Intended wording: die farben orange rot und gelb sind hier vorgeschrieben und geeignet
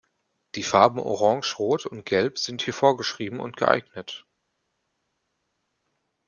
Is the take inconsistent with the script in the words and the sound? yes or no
no